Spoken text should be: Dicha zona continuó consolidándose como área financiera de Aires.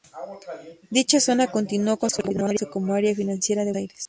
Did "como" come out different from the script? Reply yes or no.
no